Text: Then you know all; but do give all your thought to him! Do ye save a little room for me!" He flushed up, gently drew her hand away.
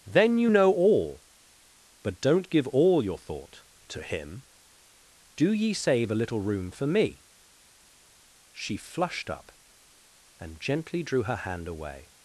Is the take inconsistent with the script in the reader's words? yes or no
yes